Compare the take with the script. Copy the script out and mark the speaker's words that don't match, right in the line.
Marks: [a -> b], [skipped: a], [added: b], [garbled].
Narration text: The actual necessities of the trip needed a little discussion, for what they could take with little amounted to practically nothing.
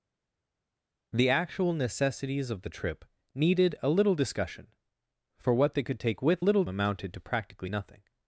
The actual necessities of the trip needed a little discussion, for what they could take with little amounted to practically nothing.